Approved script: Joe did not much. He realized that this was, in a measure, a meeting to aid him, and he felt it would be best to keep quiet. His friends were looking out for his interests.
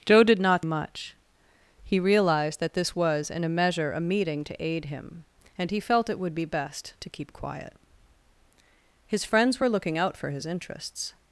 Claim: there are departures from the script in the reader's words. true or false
false